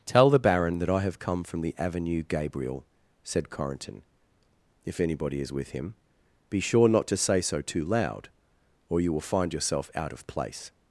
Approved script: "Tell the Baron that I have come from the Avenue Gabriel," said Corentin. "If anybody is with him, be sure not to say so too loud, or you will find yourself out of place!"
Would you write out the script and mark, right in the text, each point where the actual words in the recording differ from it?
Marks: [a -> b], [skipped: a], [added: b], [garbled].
"Tell the Baron that I have come from the Avenue Gabriel," said Corentin. "If anybody is with him, be sure not to say so too loud, or you will find yourself out of place!"